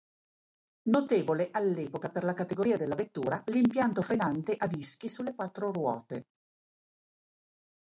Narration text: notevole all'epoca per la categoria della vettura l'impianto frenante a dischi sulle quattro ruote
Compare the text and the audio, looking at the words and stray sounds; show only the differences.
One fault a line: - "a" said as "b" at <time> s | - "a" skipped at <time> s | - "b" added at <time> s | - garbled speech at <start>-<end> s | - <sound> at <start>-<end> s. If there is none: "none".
none